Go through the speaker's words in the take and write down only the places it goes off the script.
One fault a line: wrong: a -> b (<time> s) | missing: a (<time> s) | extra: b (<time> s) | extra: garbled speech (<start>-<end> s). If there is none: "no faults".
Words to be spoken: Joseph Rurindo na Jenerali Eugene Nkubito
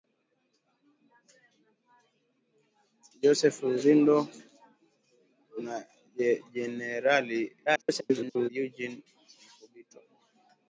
extra: garbled speech (7.7-8.5 s)